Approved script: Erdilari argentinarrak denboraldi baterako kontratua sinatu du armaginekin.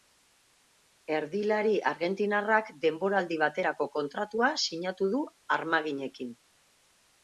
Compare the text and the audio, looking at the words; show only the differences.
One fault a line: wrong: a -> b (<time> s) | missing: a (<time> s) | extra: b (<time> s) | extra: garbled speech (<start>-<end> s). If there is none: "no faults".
no faults